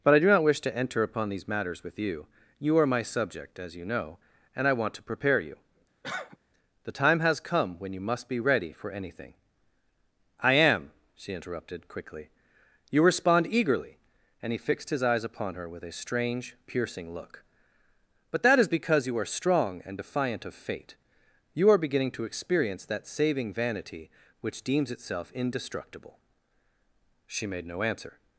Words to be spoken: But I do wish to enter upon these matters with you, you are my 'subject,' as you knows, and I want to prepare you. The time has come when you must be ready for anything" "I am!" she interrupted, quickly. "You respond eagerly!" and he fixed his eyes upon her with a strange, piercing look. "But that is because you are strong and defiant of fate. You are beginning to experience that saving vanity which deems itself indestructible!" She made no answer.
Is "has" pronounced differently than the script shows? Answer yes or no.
no